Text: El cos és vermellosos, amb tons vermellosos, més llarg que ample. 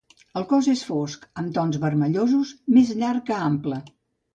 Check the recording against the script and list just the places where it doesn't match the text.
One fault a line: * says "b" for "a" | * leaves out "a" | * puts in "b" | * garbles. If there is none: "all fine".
* says "fosc" for "vermellosos"